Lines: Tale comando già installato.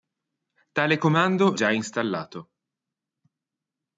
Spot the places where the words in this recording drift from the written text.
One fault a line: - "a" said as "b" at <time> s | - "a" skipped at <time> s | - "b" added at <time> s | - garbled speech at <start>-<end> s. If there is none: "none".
none